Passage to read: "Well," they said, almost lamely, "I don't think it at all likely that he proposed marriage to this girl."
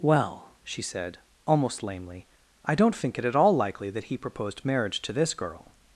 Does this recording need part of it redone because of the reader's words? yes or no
yes